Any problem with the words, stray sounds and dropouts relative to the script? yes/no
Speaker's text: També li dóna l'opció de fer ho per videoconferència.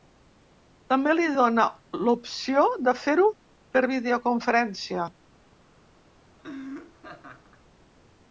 yes